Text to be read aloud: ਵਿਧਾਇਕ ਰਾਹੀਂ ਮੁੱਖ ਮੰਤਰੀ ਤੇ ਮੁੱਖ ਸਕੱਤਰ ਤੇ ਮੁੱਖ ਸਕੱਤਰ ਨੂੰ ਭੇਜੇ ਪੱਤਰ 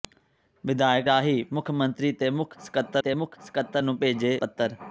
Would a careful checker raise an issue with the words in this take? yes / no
no